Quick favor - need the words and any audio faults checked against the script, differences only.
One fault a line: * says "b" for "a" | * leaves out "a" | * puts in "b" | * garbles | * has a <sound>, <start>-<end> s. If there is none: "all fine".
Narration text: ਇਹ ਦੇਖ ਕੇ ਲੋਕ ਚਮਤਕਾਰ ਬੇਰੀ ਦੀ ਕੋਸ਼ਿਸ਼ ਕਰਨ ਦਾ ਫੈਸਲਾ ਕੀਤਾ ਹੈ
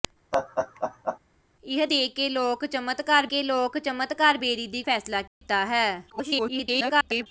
* has a laugh, 0.3-1.2 s
* says "ਕੇ ਲੋਕ ਚਮਤਕਾਰ ਬੇਰੀ ਦੀ" for "ਬੇਰੀ ਦੀ ਕੋਸ਼ਿਸ਼ ਕਰਨ ਦਾ"
* has a dropout, 5.3-5.4 s
* garbles